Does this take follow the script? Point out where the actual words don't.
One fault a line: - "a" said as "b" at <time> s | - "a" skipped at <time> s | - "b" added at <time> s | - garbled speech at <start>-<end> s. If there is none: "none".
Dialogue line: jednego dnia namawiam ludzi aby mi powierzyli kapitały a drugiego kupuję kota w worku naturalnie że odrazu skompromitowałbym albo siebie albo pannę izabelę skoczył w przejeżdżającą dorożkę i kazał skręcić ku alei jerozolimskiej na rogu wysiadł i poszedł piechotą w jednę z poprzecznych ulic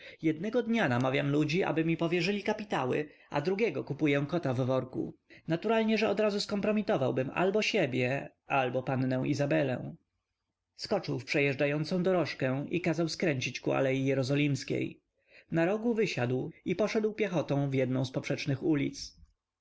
none